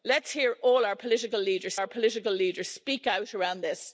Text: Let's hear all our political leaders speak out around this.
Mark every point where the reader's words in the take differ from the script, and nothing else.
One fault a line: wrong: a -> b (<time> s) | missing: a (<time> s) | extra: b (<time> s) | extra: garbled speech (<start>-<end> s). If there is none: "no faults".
extra: our political leaders (1.7 s)